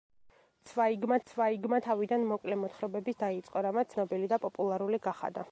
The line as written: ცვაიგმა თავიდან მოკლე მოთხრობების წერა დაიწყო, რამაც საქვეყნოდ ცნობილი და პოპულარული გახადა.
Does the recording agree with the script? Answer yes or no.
no